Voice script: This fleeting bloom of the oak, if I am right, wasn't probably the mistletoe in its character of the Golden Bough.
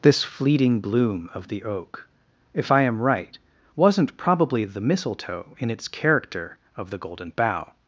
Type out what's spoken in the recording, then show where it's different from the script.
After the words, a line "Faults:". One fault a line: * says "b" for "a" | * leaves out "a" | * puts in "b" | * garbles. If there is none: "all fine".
This fleeting bloom of the oak, if I am right, wasn't probably the mistletoe in its character of the Golden Bough.
Faults:
all fine